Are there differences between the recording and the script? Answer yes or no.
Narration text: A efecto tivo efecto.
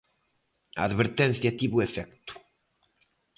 yes